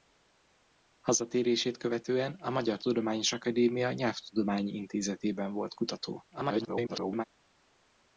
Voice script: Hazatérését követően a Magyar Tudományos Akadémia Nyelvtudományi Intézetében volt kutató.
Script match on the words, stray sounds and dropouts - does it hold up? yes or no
no